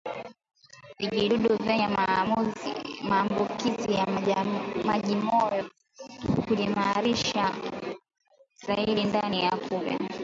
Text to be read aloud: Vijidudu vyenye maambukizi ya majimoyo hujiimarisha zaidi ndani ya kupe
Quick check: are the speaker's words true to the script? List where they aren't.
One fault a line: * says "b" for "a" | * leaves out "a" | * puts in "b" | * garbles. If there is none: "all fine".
all fine